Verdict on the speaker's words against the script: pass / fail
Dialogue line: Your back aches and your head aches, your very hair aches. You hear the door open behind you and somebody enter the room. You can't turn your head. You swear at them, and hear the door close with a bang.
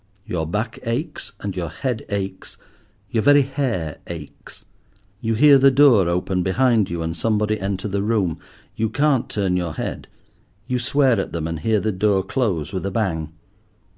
pass